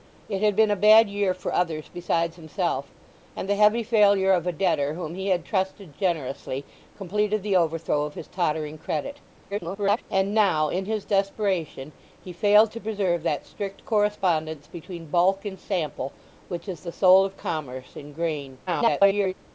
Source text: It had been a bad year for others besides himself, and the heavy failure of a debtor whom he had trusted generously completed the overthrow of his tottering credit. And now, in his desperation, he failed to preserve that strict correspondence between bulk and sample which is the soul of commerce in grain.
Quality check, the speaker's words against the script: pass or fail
fail